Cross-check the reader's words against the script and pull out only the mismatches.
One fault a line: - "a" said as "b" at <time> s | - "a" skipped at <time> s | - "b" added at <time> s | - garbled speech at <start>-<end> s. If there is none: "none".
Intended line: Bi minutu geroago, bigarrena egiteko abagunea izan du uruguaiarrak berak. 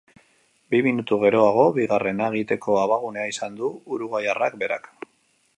none